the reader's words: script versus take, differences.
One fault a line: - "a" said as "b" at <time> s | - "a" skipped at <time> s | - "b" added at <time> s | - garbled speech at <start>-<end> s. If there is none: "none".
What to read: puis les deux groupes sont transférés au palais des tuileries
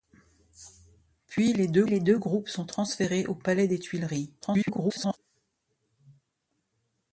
- "les deux" added at 1.9 s
- garbled speech at 4.4-5.2 s